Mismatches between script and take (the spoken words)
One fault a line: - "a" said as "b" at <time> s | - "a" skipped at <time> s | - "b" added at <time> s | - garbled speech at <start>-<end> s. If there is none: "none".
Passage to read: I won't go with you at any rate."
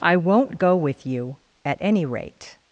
none